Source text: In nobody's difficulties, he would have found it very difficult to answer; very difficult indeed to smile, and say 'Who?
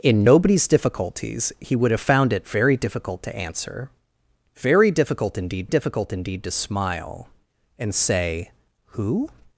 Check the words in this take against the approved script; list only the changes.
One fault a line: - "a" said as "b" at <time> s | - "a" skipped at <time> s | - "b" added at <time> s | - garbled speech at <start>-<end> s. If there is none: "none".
- "difficult indeed" added at 5.7 s